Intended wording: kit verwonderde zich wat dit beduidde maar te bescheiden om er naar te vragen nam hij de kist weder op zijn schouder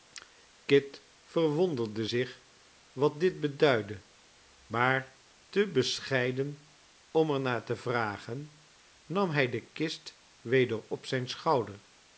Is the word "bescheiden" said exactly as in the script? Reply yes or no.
yes